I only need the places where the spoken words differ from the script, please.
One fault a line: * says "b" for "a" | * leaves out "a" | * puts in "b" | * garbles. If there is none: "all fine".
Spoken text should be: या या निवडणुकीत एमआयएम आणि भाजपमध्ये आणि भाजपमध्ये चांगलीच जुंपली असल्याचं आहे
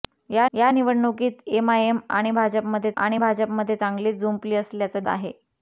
all fine